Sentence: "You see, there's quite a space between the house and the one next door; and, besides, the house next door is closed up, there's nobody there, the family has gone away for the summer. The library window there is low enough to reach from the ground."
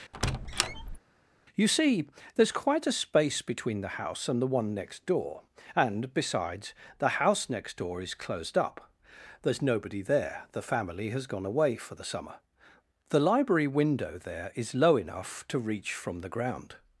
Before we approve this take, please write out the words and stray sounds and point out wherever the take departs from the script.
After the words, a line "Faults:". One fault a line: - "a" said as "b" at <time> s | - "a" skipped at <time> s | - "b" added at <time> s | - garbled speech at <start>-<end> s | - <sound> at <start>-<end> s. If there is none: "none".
"You see, there's quite a space between the house and the one next door; and, besides, the house next door is closed up, there's nobody there, the family has gone away for the summer. The library window there is low enough to reach from the ground."
Faults:
- squeak at 0.1-1.0 s